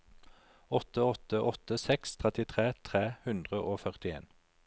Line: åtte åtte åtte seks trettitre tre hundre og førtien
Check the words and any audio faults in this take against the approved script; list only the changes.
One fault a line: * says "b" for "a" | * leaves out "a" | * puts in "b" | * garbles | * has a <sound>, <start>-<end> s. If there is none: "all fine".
all fine